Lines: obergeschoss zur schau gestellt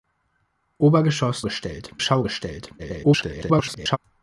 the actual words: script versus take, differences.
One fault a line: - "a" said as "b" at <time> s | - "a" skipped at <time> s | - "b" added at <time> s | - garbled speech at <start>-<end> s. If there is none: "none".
- "zur" said as "gestellt" at 1.4 s
- garbled speech at 2.8-4.0 s